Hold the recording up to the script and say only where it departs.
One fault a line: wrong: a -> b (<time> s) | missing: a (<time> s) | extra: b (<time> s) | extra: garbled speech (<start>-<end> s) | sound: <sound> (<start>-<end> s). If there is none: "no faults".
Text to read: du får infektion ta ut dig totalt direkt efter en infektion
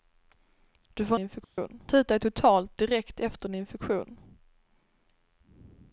sound: dropout (1.4-1.6 s)